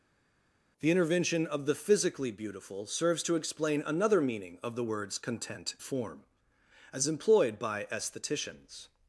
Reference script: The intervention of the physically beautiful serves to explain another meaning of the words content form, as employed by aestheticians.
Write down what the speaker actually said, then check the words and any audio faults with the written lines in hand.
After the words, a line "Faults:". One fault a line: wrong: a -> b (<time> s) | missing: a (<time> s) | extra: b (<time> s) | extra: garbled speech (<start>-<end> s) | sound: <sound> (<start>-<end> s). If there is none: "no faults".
The intervention of the physically beautiful serves to explain another meaning of the words content form, as employed by aestheticians.
Faults:
no faults